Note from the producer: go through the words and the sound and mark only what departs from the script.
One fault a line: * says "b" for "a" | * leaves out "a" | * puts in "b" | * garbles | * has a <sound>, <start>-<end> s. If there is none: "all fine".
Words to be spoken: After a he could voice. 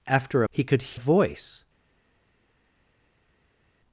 all fine